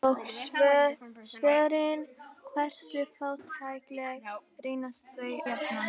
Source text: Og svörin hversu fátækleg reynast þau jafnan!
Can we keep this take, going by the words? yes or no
yes